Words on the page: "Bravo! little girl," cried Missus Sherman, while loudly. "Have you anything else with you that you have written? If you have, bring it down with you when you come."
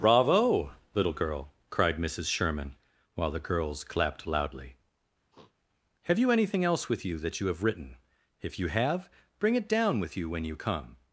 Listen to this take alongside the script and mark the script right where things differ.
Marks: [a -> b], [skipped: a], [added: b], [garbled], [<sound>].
"Bravo! little girl," cried Missus Sherman, while [added: the girls clapped] loudly. [sniff] "Have you anything else with you that you have written? If you have, bring it down with you when you come."